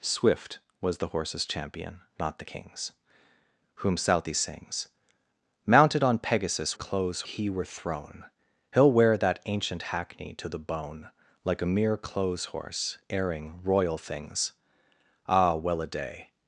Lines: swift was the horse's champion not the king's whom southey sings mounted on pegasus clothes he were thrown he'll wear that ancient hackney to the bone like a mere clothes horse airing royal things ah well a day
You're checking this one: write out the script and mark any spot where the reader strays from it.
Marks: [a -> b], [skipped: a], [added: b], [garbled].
swift was the horse's champion not the king's whom southey sings mounted on pegasus clothes he were thrown he'll wear that ancient hackney to the bone like a mere clothes horse airing royal things ah well a day